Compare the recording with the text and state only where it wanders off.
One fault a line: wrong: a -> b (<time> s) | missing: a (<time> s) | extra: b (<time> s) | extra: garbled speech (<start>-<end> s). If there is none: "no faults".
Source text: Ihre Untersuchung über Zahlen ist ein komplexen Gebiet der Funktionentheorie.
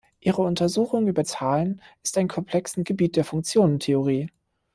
no faults